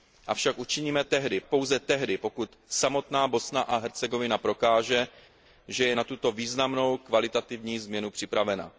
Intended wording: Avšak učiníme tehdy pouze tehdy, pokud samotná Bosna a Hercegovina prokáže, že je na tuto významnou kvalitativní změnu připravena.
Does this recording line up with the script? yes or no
yes